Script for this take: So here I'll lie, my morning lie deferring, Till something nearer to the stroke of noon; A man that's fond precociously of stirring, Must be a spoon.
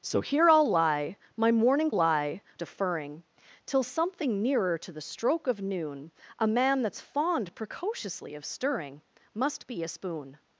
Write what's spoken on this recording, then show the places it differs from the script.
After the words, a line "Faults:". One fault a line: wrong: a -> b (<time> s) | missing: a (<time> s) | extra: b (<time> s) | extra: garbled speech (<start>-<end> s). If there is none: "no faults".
So here I'll lie, my morning lie deferring, Till something nearer to the stroke of noon; A man that's fond precociously of stirring, Must be a spoon.
Faults:
no faults